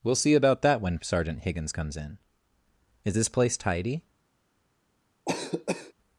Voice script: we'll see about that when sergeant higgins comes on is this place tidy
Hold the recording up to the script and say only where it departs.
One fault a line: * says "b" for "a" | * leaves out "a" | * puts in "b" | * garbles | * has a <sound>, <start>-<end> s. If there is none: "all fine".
* says "in" for "on"
* has a cough, 5.3-5.9 s